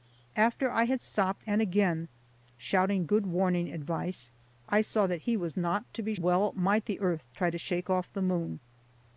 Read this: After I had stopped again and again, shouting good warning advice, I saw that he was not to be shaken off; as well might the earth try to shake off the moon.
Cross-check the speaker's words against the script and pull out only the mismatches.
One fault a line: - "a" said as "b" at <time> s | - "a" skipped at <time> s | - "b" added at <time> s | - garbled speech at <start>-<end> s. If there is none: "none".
- "again" skipped at 1.5 s
- "shaken off as" skipped at 6.1 s